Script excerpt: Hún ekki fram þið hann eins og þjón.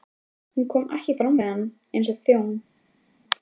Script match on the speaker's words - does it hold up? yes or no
no